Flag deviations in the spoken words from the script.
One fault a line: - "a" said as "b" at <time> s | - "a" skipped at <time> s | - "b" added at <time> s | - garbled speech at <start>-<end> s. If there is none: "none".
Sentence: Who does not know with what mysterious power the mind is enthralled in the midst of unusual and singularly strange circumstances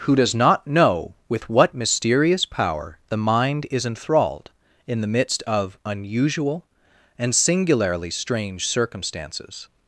none